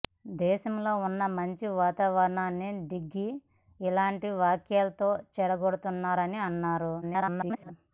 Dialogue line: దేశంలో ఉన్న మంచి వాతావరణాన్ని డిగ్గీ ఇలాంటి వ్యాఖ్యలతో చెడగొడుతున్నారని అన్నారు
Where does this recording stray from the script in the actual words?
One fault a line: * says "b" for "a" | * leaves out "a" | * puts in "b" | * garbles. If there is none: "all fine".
* garbles